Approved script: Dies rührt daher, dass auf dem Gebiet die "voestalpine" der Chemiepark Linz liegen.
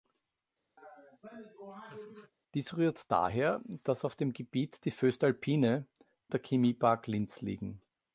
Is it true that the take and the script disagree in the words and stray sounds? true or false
true